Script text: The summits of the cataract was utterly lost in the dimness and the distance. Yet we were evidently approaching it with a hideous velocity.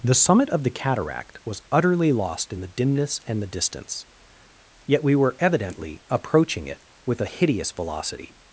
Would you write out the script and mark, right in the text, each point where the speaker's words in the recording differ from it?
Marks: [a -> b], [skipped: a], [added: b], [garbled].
The [summits -> summit] of the cataract was utterly lost in the dimness and the distance. Yet we were evidently approaching it with a hideous velocity.